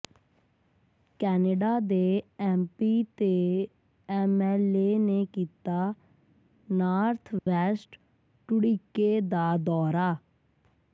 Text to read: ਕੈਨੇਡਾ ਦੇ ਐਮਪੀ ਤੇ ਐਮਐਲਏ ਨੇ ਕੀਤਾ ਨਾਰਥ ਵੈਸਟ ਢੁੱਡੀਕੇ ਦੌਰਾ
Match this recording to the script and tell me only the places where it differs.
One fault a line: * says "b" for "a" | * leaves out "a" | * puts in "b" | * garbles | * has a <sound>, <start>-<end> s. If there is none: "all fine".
* has a dropout, 7.4-7.5 s
* puts in "ਦਾ"